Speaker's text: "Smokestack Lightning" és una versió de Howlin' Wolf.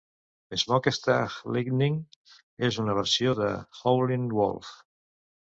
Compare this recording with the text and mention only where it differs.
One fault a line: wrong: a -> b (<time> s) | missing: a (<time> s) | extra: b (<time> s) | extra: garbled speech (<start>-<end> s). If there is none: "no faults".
no faults